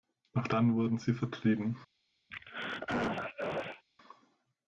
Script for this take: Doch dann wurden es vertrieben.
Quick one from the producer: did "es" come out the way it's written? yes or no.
no